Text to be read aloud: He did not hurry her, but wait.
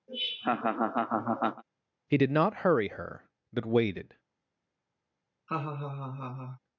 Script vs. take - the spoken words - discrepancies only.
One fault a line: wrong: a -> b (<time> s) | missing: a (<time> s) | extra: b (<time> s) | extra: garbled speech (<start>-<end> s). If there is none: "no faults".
wrong: wait -> waited (3.7 s)